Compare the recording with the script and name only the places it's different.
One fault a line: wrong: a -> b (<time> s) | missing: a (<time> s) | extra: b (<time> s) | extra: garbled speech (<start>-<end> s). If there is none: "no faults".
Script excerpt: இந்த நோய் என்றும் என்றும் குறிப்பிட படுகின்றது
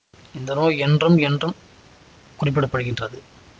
no faults